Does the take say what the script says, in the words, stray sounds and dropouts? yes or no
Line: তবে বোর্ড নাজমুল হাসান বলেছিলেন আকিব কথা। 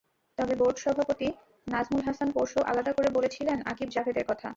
no